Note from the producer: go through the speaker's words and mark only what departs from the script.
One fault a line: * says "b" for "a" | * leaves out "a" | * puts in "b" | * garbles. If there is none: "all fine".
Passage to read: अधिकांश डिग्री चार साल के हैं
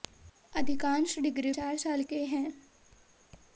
all fine